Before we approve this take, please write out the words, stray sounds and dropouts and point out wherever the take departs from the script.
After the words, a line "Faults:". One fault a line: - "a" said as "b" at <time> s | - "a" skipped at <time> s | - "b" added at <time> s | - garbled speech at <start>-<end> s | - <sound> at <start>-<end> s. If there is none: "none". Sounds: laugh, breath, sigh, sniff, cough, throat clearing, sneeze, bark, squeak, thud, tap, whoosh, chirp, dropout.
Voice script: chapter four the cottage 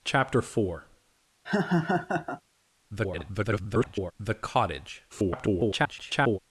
chapter four [garbled] the cottage [garbled]
Faults:
- laugh at 1.4-2.4 s
- garbled speech at 2.9-4.1 s
- garbled speech at 5.1-6.4 s